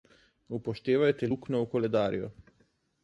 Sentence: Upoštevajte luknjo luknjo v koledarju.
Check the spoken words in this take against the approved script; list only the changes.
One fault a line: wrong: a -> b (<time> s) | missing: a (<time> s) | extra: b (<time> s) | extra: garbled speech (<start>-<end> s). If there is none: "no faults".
missing: luknjo (1.6 s)